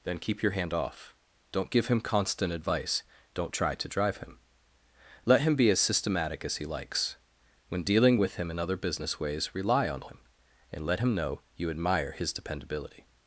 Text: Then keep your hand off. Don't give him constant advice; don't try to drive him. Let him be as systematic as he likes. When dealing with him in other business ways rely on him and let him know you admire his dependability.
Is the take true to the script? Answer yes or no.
yes